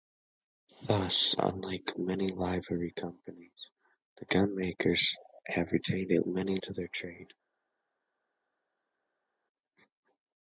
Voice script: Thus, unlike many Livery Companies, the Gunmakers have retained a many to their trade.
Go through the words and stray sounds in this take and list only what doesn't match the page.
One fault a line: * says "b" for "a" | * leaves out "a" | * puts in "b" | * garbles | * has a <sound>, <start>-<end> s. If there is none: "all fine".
all fine